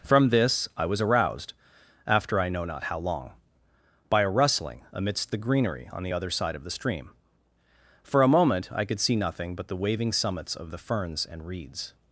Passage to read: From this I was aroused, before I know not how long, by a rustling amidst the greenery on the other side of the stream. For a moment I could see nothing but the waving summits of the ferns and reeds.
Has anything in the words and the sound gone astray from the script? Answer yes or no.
yes